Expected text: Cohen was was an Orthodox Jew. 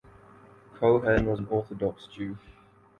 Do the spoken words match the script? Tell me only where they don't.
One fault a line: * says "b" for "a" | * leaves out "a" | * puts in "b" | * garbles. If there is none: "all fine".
* leaves out "was"